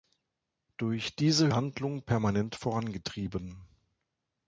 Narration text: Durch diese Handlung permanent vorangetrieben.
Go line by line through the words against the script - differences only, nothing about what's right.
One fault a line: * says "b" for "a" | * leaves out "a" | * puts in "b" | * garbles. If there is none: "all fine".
all fine